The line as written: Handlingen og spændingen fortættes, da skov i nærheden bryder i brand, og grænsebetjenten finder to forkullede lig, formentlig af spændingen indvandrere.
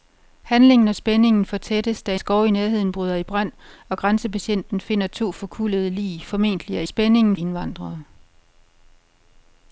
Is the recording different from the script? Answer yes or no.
no